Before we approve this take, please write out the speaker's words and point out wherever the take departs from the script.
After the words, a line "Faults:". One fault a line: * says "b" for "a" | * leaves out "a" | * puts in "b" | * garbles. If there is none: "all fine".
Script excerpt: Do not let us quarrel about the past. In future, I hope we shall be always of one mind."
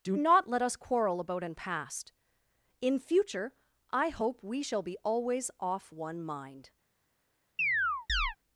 Do not let us quarrel about an past. In future, I hope we shall be always off one mind."
Faults:
* says "an" for "the"
* says "off" for "of"